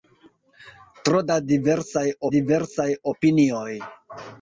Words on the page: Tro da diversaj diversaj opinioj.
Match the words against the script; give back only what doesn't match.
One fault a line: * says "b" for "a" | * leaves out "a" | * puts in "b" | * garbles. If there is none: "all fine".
all fine